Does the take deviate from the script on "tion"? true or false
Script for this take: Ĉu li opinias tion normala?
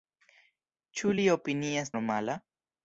true